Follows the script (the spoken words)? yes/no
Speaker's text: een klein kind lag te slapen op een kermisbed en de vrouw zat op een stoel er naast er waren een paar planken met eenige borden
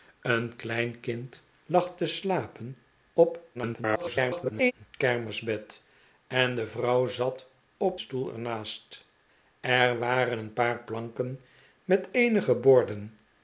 no